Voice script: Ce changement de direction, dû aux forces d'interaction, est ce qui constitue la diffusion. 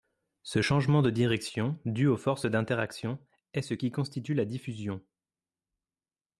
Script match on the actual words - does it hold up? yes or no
yes